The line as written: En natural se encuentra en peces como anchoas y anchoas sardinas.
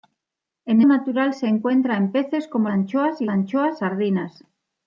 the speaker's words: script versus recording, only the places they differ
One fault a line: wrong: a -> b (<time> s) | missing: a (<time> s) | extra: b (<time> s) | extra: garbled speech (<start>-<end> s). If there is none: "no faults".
no faults